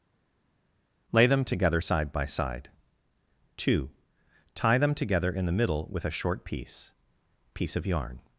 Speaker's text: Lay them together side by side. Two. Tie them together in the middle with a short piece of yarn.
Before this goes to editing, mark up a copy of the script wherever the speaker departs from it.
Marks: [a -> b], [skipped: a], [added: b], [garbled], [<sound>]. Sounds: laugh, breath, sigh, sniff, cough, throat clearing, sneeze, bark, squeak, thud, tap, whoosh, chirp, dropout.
Lay them together side by side. Two. Tie them together in the middle with a short piece [added: piece] of yarn.